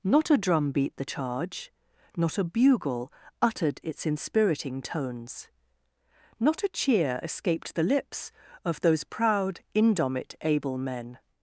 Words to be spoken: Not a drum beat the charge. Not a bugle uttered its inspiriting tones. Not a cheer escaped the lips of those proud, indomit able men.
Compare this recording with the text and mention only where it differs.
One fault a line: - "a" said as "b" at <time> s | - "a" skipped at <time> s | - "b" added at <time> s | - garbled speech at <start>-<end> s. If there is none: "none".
none